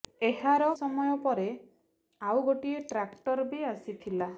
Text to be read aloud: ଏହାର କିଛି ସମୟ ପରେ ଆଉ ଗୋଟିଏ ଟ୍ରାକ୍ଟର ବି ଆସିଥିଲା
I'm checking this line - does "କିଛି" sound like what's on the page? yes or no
no